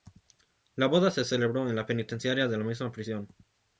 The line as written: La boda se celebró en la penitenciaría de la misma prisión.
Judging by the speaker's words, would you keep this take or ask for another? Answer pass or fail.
pass